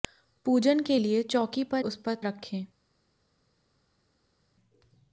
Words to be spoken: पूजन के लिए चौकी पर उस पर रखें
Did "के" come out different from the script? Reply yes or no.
no